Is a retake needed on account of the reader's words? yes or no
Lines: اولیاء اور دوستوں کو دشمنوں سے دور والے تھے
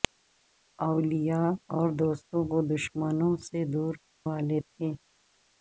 no